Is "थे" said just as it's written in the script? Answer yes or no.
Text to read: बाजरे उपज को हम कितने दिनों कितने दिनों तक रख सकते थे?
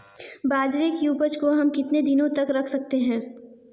no